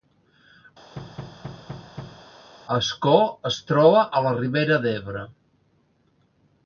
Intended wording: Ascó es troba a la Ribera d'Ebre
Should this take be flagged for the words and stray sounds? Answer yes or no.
yes